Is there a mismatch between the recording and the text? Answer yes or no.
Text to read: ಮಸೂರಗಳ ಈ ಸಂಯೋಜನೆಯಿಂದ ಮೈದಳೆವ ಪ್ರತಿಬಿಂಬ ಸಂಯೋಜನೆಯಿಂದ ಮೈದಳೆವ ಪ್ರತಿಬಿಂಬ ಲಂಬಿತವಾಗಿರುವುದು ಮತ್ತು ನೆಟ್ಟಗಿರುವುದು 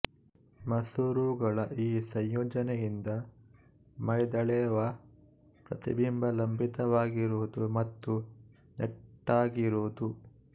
yes